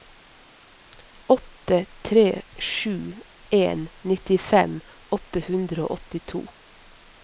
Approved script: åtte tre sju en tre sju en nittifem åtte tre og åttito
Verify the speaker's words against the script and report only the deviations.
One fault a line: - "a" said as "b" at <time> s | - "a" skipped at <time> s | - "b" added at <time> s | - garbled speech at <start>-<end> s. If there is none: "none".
- "tre sju en" skipped at 3.9 s
- "tre" said as "hundre" at 5.5 s